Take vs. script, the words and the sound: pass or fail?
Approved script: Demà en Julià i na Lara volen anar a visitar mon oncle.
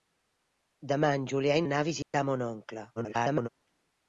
fail